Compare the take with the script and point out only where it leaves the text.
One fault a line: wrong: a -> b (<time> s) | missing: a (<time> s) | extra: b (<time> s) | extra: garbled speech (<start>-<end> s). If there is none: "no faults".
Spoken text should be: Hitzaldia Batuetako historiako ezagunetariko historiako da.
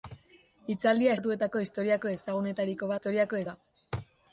no faults